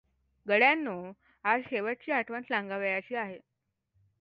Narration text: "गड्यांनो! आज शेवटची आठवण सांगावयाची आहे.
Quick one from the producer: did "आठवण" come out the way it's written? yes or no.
yes